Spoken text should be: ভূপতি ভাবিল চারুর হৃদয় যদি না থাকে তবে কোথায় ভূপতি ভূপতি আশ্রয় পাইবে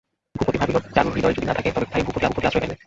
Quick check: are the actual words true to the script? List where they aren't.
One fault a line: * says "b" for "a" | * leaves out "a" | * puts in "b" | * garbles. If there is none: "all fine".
all fine